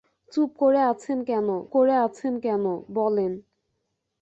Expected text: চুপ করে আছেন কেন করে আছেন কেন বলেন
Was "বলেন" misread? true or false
false